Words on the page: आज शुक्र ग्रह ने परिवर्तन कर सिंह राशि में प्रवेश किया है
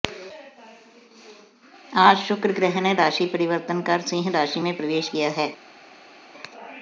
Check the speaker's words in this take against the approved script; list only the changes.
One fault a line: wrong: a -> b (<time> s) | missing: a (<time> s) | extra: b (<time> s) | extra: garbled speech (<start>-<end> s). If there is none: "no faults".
extra: राशि (2.9 s)